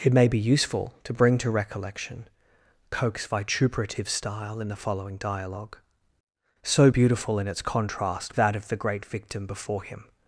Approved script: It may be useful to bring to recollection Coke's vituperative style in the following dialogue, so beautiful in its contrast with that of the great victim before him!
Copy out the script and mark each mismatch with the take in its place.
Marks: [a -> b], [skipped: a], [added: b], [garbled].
It may be useful to bring to recollection Coke's vituperative style in the following dialogue, so beautiful in its contrast [skipped: with] that of the great victim before him!